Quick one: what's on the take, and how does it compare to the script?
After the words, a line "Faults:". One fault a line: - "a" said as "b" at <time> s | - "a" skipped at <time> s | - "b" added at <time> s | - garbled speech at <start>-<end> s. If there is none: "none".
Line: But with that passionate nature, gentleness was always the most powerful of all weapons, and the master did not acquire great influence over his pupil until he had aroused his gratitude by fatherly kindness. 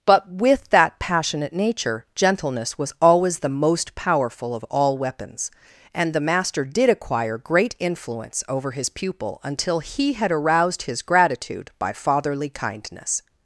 But with that passionate nature, gentleness was always the most powerful of all weapons, and the master did acquire great influence over his pupil until he had aroused his gratitude by fatherly kindness.
Faults:
- "not" skipped at 6.9 s